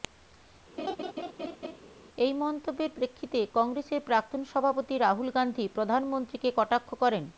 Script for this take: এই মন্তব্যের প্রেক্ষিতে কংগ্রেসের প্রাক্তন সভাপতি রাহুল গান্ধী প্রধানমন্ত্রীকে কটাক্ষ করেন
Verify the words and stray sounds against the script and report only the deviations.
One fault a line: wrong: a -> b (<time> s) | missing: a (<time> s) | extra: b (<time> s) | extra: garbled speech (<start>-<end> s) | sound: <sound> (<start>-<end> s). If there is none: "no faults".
sound: laugh (0.8-1.8 s)